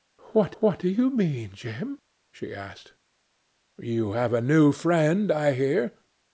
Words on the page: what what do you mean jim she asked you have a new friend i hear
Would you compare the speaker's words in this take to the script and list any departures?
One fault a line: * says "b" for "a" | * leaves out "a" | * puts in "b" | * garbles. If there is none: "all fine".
all fine